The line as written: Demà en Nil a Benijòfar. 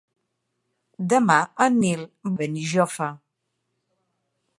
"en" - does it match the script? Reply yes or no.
yes